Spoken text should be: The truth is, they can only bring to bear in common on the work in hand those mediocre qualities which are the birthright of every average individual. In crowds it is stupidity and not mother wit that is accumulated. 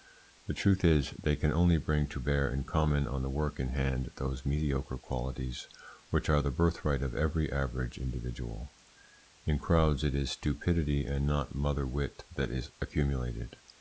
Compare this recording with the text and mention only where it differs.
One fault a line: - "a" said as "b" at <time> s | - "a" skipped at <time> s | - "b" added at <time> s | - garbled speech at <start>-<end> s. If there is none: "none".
none